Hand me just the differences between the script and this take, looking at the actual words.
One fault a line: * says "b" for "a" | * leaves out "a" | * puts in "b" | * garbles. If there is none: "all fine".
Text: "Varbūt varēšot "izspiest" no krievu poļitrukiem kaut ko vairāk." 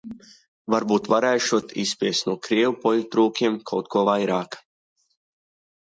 all fine